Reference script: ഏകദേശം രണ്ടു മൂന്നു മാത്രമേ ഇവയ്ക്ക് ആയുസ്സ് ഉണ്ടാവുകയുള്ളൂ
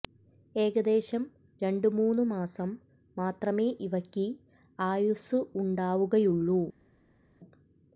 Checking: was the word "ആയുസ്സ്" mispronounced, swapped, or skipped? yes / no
no